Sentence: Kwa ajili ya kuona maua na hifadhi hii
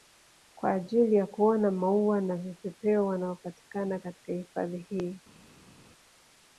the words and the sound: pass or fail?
fail